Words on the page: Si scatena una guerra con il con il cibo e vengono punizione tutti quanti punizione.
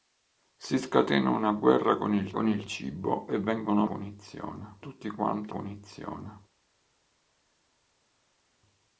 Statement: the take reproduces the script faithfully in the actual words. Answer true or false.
true